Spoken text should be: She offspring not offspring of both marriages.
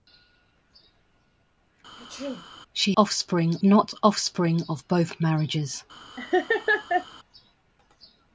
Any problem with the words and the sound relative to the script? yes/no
yes